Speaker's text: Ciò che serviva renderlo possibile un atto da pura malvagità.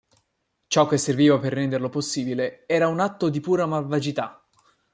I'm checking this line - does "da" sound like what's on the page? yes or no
no